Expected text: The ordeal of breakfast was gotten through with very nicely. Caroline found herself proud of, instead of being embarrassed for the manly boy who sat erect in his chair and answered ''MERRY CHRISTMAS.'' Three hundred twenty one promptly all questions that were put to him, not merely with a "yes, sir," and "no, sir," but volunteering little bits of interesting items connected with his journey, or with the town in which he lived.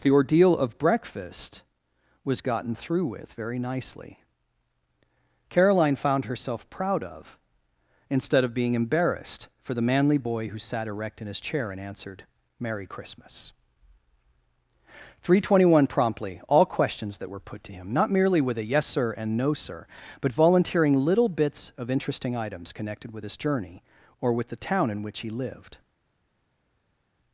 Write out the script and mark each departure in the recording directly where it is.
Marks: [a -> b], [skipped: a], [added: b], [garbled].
The ordeal of breakfast was gotten through with very nicely. Caroline found herself proud of, instead of being embarrassed for the manly boy who sat erect in his chair and answered ''MERRY CHRISTMAS.'' Three hundred twenty one promptly all questions that were put to him, not merely with a "yes, sir," and "no, sir," but volunteering little bits of interesting items connected with his journey, or with the town in which he lived.